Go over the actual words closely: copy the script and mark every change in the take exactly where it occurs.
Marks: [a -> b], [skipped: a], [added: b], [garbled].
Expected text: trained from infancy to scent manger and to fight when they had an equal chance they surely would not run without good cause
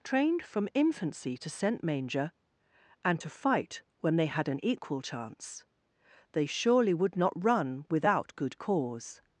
trained from infancy to scent manger and to fight when they had an equal chance they surely would not run without good cause